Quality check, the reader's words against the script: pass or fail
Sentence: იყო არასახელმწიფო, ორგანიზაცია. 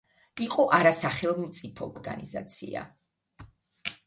pass